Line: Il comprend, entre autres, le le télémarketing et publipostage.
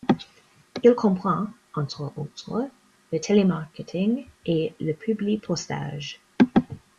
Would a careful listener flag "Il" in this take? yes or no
no